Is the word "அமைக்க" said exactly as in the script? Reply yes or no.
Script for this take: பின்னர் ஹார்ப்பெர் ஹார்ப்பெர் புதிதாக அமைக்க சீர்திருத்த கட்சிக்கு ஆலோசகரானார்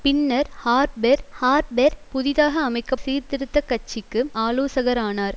yes